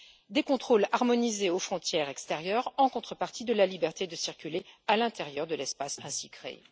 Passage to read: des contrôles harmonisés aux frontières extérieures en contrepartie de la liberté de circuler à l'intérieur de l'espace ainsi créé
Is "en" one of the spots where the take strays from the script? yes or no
no